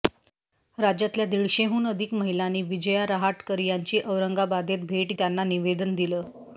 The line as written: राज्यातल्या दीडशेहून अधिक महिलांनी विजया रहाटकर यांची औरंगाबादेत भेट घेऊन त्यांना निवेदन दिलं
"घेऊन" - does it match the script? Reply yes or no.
no